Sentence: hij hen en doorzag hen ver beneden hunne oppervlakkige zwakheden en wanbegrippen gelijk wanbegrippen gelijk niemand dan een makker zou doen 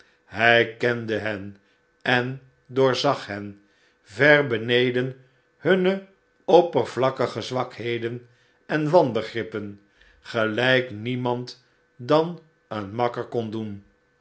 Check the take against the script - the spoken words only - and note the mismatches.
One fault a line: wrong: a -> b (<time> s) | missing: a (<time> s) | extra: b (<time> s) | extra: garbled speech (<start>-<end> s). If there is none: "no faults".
extra: kende (0.8 s)
missing: wanbegrippen gelijk (10.9 s)
wrong: zou -> kon (13.2 s)